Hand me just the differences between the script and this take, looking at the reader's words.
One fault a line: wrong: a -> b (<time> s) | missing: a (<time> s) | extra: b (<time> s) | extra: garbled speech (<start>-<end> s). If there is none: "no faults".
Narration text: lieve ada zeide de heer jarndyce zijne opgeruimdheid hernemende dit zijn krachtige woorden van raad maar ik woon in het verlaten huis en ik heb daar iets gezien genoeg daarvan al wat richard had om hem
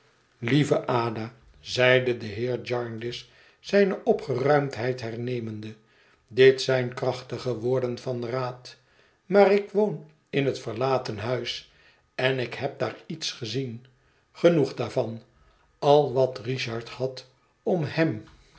no faults